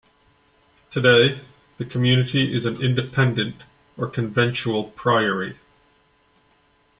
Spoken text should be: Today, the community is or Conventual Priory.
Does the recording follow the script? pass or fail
fail